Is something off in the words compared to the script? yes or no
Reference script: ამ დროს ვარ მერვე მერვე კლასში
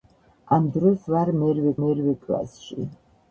no